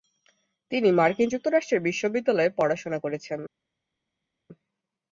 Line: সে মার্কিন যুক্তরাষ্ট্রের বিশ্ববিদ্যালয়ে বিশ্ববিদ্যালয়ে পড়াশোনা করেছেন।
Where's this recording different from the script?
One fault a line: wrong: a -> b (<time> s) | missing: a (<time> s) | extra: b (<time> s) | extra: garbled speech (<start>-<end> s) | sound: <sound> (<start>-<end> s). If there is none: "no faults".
wrong: সে -> তিনি (0.7 s)
missing: বিশ্ববিদ্যালয়ে (2.6 s)